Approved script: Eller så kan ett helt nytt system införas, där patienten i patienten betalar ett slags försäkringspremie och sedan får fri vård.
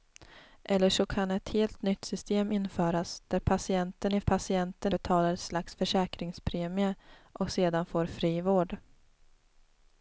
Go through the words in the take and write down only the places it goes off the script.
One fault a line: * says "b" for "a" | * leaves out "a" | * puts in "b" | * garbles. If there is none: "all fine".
all fine